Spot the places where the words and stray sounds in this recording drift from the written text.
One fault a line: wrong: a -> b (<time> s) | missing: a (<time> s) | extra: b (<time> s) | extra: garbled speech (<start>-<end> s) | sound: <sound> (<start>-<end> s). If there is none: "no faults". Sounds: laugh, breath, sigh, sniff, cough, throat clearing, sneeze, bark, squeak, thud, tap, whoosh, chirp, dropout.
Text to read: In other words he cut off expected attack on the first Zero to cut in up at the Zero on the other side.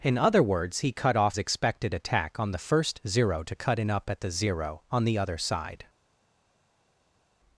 no faults